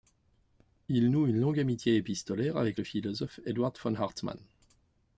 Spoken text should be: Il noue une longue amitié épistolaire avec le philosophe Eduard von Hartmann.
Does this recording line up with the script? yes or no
yes